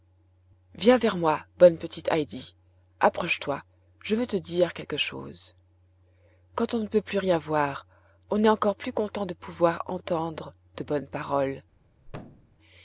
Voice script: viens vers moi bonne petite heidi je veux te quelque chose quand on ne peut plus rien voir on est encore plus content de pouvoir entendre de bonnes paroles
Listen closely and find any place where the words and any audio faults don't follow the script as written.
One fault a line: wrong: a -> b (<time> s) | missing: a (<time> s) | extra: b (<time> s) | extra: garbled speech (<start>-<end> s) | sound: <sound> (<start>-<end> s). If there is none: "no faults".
extra: approche toi (3.0 s)
extra: dire (4.4 s)
sound: thud (12.1-12.6 s)